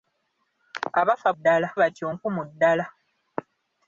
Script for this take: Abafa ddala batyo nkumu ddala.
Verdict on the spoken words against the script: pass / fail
pass